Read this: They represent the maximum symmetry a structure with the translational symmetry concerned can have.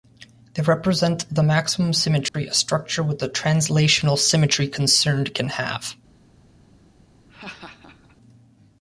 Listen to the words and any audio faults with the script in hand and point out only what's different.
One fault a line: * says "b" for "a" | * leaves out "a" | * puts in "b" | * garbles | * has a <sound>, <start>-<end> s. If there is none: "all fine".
* has a dropout, 2.3-2.3 s
* has a laugh, 7.3-8.2 s